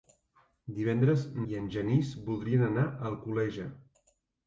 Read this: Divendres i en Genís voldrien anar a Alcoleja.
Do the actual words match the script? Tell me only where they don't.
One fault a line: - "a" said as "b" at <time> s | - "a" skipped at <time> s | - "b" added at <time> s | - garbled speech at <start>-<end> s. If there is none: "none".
none